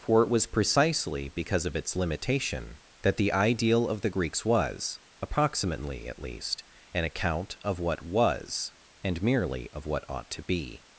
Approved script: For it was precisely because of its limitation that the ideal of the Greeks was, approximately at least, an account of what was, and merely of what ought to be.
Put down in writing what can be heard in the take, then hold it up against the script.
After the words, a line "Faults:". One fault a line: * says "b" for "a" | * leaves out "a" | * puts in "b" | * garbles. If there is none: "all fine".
For it was precisely because of its limitation that the ideal of the Greeks was, approximately at least, an account of what was, and merely of what ought to be.
Faults:
all fine